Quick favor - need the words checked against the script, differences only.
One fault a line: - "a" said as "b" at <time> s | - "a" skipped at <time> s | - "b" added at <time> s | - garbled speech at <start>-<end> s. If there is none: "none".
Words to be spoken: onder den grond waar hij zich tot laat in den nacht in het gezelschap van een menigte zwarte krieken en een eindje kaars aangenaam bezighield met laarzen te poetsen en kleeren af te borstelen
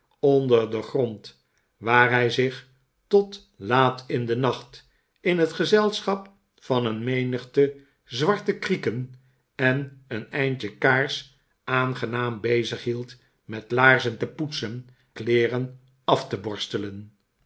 - "en" skipped at 14.9 s